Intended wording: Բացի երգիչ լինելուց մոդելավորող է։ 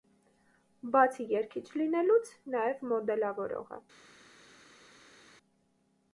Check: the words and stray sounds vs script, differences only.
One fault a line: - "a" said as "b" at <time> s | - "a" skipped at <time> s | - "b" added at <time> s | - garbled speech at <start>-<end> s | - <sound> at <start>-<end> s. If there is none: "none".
- "նաև" added at 2.5 s